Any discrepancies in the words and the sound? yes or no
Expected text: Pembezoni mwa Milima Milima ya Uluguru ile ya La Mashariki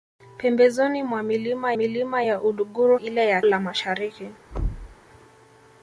yes